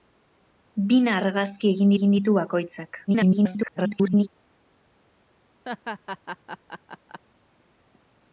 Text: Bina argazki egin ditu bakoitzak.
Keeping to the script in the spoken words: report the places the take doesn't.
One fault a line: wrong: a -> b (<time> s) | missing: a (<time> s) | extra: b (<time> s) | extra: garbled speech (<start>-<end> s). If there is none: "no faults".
extra: egin (1.9 s)
extra: garbled speech (3.1-4.3 s)